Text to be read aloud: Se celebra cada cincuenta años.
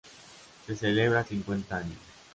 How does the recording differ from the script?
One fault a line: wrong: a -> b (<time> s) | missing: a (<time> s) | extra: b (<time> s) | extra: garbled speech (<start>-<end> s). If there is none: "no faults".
missing: cada (1.2 s)